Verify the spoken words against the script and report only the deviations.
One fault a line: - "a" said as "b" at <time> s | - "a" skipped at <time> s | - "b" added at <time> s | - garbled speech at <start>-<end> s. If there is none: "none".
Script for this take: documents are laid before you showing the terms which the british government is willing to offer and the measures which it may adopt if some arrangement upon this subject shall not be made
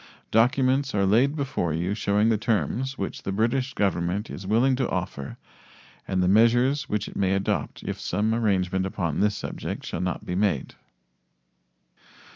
none